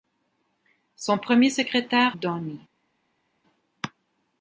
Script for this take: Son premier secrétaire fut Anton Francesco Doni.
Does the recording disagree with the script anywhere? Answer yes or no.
yes